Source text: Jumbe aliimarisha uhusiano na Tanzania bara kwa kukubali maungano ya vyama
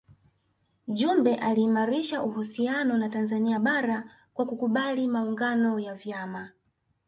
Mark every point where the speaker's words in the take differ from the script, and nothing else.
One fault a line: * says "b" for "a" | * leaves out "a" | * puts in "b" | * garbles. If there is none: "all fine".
all fine